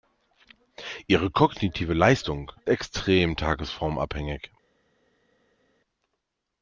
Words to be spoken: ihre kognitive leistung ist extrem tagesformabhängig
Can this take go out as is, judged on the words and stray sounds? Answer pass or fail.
fail